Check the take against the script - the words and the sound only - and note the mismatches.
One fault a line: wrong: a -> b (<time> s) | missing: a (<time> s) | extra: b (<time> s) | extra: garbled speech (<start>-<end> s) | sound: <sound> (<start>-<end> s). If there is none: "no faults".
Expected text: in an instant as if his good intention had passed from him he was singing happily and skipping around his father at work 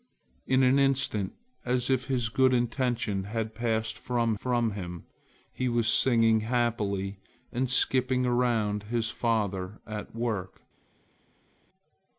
extra: from (4.3 s)